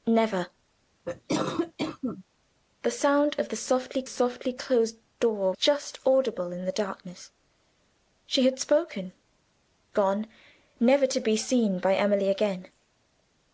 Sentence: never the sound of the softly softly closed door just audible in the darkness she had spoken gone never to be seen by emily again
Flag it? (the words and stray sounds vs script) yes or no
yes